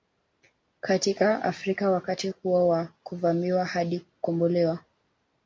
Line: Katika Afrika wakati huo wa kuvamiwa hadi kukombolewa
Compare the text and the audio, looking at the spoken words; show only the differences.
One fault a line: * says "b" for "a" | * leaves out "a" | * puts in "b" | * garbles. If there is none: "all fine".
all fine